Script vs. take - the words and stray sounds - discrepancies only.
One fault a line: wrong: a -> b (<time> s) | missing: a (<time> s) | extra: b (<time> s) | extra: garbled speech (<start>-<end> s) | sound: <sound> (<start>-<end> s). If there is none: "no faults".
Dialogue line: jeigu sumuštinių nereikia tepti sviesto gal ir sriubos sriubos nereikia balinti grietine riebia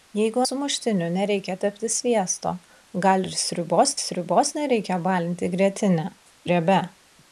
no faults